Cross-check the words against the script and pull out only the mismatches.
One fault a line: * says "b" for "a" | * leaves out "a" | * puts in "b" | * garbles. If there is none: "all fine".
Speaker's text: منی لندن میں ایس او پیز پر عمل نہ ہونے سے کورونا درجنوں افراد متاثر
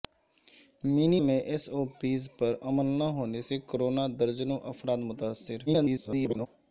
* leaves out "لندن"
* garbles